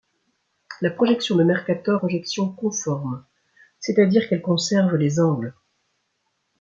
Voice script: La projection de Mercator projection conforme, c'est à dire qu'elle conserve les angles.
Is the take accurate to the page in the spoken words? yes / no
yes